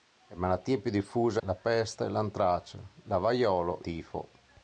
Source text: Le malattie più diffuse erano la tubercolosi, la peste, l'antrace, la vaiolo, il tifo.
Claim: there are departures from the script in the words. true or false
true